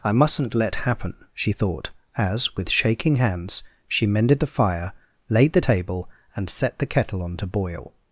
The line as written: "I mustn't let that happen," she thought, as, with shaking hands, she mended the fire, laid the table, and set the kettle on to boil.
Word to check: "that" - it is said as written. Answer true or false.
false